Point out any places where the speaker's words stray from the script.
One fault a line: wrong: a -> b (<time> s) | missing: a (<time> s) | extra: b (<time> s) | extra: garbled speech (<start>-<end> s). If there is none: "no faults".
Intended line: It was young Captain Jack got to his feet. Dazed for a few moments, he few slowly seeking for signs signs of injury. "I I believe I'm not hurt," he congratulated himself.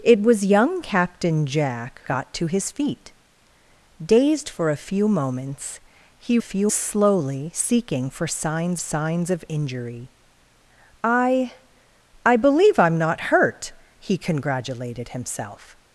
no faults